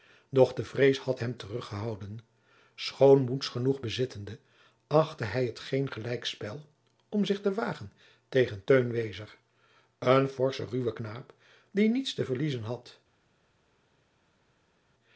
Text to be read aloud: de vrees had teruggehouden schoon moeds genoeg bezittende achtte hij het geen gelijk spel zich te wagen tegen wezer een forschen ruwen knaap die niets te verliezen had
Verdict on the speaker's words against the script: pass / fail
fail